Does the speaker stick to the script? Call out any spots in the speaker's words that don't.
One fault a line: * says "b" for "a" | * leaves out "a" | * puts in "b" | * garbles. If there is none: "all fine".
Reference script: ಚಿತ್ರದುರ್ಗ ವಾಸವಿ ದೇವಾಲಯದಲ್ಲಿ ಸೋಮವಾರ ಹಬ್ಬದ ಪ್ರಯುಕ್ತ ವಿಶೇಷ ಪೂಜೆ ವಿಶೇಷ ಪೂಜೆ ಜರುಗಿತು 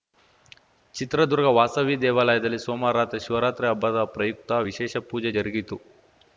* puts in "ರಾತ್ರಿ ಶಿವರಾತ್ರಿ"
* leaves out "ವಿಶೇಷ ಪೂಜೆ"